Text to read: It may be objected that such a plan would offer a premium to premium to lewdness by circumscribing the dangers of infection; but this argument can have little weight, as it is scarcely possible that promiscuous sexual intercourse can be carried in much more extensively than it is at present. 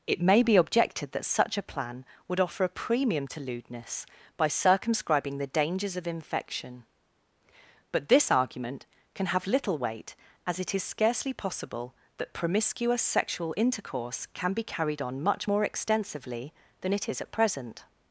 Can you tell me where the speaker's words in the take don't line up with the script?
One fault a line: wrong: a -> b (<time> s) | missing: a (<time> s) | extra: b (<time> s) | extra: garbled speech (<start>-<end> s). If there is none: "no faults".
missing: premium to (3.4 s)
wrong: in -> on (15.0 s)